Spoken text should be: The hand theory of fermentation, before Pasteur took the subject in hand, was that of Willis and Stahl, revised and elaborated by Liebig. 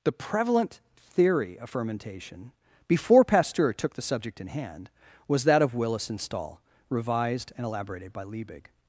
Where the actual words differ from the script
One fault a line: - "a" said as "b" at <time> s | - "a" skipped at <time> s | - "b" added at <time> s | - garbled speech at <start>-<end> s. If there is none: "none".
- "hand" said as "prevalent" at 0.1 s